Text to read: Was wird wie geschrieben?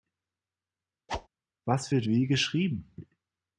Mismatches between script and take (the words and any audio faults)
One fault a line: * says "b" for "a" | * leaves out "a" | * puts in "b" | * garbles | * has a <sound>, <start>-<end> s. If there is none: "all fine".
* has a whoosh, 1.1-1.3 s